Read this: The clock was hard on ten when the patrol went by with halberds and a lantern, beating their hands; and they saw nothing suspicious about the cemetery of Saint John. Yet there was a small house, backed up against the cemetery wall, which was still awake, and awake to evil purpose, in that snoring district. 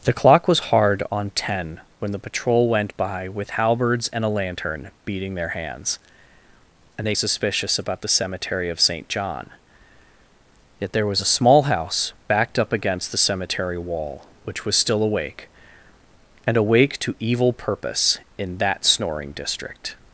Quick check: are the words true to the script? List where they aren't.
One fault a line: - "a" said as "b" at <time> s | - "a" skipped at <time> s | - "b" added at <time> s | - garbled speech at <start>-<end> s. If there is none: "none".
- "saw nothing" skipped at 7.2 s